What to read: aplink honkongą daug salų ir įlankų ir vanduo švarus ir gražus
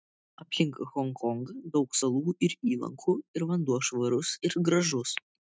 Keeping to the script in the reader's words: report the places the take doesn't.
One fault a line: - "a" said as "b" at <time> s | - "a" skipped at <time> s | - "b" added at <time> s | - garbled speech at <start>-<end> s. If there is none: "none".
none